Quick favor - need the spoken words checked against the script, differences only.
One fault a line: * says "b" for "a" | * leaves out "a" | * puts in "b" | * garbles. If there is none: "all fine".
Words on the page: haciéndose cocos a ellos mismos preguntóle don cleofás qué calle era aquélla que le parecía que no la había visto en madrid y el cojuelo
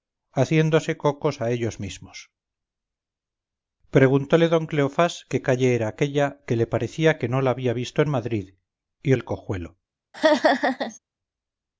all fine